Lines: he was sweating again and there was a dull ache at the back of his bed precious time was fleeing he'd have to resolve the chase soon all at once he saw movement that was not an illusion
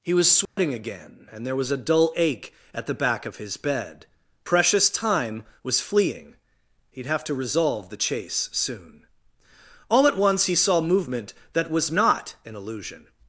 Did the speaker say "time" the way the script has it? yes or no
yes